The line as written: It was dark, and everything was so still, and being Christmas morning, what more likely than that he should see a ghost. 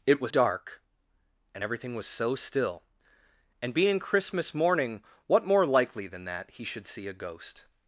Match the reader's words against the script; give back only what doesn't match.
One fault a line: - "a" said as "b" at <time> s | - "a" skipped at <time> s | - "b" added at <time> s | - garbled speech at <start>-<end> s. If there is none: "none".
none